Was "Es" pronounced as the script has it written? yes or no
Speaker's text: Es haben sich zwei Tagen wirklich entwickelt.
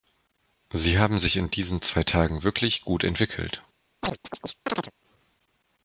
no